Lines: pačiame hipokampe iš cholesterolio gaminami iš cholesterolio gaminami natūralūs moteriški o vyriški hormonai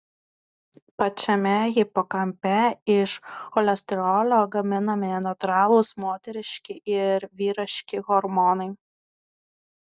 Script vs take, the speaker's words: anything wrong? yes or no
yes